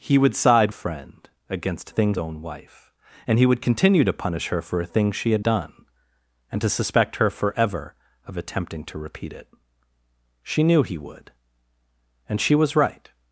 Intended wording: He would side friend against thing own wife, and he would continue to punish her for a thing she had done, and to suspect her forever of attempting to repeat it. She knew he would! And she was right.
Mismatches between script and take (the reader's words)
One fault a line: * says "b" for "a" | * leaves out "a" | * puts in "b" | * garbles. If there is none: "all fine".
all fine